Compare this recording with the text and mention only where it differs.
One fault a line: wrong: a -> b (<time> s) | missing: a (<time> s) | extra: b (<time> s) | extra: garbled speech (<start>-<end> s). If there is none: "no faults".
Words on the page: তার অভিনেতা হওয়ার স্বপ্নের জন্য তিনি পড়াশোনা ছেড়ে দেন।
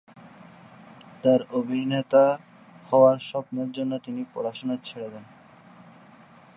no faults